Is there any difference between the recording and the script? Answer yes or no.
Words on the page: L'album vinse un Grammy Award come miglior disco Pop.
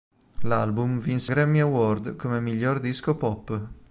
yes